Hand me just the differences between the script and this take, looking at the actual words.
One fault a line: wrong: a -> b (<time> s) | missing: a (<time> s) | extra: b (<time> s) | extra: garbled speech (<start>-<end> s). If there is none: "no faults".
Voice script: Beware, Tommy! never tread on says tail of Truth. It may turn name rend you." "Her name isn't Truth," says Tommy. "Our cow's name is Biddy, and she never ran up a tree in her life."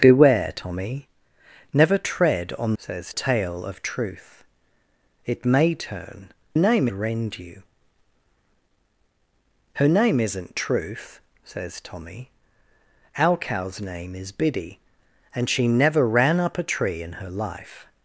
no faults